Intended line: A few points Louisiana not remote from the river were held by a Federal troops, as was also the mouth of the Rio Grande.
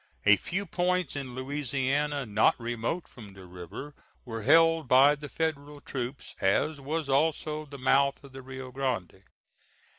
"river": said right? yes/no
yes